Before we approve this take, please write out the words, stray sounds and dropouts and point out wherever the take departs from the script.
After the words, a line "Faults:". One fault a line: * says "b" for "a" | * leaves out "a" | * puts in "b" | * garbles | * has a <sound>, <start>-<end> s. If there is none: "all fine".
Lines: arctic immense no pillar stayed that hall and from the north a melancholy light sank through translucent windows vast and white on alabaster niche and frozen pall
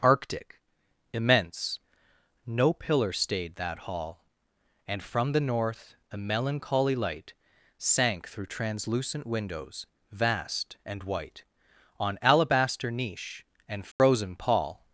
arctic immense no pillar stayed that hall and from the north a melancholy light sank through translucent windows vast and white on alabaster niche and frozen pall
Faults:
* has a dropout, 13.9-14.0 s